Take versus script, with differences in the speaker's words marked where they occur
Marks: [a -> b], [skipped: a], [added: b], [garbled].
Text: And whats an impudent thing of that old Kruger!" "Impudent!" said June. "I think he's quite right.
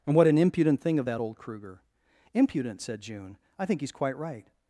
And [whats -> what] an impudent thing of that old Kruger!" "Impudent!" said June. "I think he's quite right.